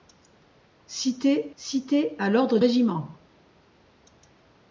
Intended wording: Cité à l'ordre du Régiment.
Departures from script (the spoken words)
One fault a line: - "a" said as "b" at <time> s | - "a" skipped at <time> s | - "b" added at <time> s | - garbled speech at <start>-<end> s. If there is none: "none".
- "cité" added at 1.6 s
- "du" skipped at 2.6 s